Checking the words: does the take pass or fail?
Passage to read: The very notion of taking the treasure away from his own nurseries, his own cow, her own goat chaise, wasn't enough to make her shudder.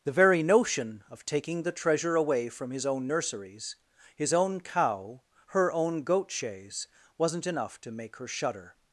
pass